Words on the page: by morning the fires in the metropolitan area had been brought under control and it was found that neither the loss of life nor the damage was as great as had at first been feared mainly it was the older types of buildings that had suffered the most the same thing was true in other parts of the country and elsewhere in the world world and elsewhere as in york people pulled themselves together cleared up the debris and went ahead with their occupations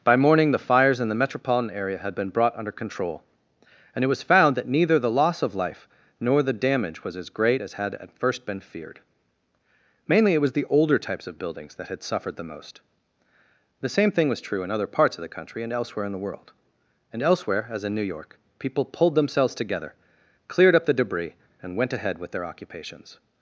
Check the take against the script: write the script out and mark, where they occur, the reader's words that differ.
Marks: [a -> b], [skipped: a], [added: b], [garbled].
by morning the fires in the metropolitan area had been brought under control and it was found that neither the loss of life nor the damage was as great as had at first been feared mainly it was the older types of buildings that had suffered the most the same thing was true in other parts of the country and elsewhere in the world [skipped: world] and elsewhere as in [added: new] york people pulled themselves together cleared up the debris and went ahead with their occupations